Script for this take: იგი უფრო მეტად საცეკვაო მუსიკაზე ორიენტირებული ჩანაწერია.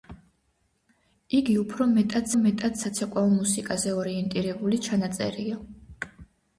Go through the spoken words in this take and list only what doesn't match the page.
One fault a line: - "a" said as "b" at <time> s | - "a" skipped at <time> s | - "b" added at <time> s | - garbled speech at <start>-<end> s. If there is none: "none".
- "მეტად" added at 2.4 s